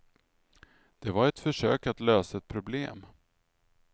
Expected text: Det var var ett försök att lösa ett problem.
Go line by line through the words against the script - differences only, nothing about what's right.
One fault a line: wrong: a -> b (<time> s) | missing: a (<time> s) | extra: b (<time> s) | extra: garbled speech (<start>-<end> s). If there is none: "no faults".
missing: var (1.3 s)